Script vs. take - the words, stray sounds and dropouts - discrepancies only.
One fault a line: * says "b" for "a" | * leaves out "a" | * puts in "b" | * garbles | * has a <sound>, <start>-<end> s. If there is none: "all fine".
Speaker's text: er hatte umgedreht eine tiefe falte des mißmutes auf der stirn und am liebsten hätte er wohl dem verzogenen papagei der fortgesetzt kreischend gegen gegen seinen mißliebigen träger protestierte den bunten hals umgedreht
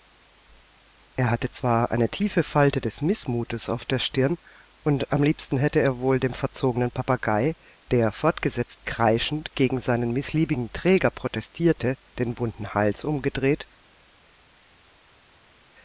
* says "zwar" for "umgedreht"
* leaves out "gegen"